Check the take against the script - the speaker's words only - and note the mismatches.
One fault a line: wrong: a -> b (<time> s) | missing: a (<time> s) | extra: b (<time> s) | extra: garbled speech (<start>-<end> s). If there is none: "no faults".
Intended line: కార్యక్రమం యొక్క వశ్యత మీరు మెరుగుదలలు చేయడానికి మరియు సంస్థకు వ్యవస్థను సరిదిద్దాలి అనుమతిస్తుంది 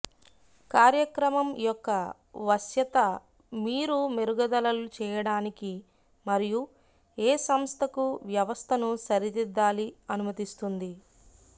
extra: ఏ (7.2 s)